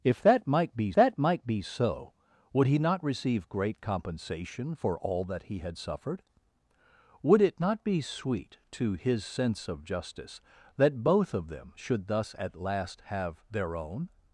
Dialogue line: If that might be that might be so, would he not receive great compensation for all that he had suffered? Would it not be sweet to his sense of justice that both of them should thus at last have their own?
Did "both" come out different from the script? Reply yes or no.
no